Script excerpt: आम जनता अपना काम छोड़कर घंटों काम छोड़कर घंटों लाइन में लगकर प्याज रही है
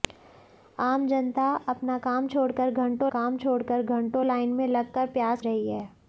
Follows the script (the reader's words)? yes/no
yes